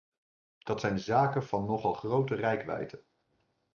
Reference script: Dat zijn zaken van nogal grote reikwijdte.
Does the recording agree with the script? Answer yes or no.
yes